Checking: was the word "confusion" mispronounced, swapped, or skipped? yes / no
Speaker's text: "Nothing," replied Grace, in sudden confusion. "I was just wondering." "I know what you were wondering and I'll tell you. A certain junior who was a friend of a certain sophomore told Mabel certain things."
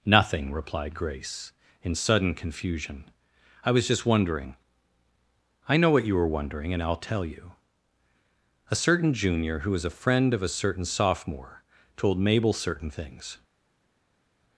no